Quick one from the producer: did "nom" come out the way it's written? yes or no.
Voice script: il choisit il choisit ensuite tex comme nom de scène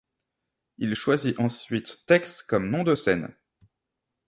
yes